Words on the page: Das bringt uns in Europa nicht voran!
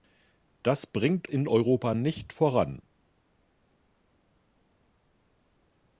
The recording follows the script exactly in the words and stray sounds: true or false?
false